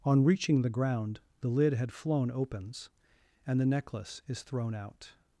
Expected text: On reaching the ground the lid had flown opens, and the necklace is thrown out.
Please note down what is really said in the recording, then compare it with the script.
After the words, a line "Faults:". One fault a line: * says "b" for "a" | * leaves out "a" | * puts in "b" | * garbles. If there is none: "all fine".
On reaching the ground the lid had flown opens, and the necklace is thrown out.
Faults:
all fine